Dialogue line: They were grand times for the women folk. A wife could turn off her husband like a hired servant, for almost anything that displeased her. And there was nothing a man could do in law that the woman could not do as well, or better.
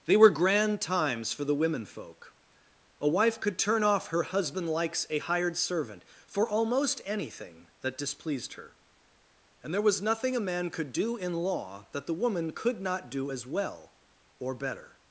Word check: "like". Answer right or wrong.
wrong